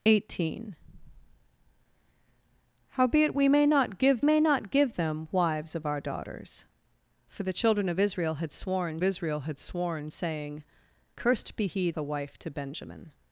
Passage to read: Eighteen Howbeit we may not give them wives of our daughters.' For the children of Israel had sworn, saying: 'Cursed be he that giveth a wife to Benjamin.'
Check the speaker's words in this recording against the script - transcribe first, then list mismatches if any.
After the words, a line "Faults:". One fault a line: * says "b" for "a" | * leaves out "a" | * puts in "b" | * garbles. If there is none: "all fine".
Eighteen Howbeit we may not give may not give them wives of our daughters.' For the children of Israel had sworn Israel had sworn, saying: 'Cursed be he a wife to Benjamin.'
Faults:
* puts in "may not give"
* puts in "Israel had sworn"
* leaves out "that giveth"